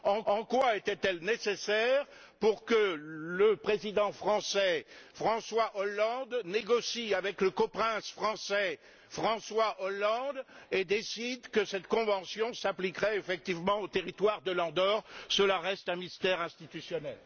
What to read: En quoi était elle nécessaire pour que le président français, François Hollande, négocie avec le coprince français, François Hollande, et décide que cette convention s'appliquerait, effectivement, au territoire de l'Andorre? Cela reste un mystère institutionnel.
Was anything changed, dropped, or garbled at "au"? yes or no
no